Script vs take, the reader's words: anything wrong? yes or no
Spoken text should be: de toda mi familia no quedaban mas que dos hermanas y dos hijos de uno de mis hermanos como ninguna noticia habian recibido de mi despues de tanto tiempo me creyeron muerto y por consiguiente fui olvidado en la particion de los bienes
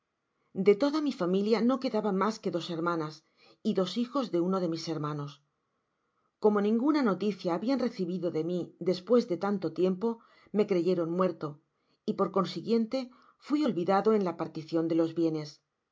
no